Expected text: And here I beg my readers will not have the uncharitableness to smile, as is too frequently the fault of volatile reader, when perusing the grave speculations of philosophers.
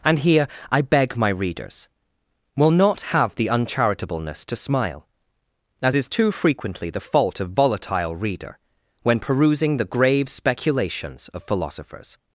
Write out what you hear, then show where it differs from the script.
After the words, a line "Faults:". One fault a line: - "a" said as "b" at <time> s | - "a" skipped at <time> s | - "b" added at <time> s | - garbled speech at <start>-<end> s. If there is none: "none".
And here I beg my readers will not have the uncharitableness to smile, as is too frequently the fault of volatile reader, when perusing the grave speculations of philosophers.
Faults:
none